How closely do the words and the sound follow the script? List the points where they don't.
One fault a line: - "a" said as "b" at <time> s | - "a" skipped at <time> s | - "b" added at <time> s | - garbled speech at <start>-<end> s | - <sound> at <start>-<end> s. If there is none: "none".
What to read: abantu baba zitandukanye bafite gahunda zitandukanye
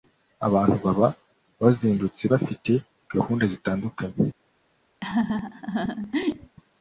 - "zitandukanye" said as "bazindutse" at 1.6 s
- laugh at 5.0-6.6 s